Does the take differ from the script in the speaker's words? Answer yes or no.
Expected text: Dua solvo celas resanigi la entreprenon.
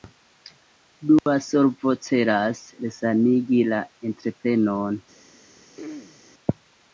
no